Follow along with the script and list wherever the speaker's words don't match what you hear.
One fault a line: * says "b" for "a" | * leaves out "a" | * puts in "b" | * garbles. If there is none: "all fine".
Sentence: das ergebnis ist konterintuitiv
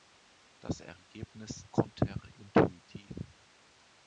* leaves out "ist"